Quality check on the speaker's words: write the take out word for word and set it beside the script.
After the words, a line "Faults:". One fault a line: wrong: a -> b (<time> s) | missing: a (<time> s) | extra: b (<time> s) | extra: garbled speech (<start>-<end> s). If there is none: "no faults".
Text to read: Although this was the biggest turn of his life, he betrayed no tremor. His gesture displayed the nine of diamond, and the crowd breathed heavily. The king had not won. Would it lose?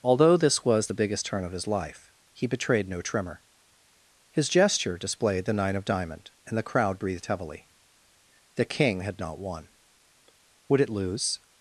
Although this was the biggest turn of his life, he betrayed no tremor. His gesture displayed the nine of diamond, and the crowd breathed heavily. The king had not won. Would it lose?
Faults:
no faults